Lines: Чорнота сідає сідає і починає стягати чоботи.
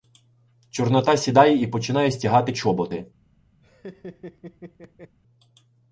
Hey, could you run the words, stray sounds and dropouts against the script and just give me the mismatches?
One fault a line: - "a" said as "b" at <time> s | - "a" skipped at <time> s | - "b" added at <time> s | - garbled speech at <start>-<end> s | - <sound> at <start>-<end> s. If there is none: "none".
- "сідає" skipped at 1.6 s
- laugh at 3.6-5.2 s